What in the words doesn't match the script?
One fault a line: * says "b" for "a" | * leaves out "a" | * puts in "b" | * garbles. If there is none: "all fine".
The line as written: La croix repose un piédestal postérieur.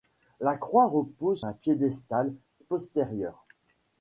all fine